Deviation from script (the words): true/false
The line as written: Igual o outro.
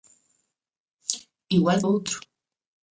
false